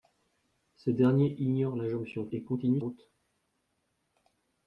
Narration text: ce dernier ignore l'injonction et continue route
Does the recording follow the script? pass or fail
pass